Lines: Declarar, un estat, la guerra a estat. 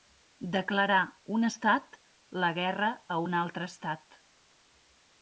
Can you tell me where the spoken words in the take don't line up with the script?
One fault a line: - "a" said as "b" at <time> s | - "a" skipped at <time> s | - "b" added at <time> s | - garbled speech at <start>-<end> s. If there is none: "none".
- "un altre" added at 3.3 s